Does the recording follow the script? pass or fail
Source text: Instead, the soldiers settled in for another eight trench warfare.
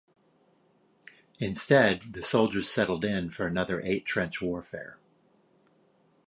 pass